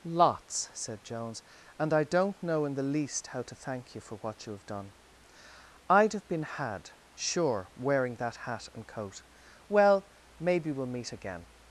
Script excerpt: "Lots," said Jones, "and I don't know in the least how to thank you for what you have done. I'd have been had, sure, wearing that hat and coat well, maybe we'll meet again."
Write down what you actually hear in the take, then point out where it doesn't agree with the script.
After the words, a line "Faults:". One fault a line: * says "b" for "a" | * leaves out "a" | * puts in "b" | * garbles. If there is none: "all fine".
"Lots," said Jones, "and I don't know in the least how to thank you for what you have done. I'd have been had, sure, wearing that hat and coat well, maybe we'll meet again."
Faults:
all fine